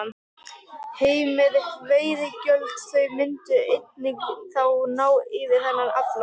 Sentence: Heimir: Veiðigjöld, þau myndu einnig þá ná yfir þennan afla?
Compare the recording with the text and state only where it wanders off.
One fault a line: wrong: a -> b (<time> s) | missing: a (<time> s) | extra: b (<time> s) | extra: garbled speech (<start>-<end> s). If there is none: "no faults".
no faults